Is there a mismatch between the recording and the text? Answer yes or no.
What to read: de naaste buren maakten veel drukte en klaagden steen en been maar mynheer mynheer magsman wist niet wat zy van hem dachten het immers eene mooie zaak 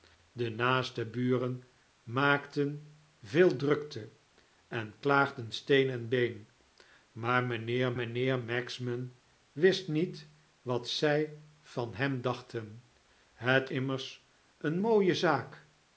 no